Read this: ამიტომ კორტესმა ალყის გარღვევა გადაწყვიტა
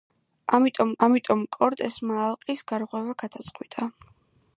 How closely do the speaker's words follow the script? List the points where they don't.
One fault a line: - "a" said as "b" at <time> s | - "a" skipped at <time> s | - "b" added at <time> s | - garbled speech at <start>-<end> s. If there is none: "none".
- "ამიტომ" added at 1.1 s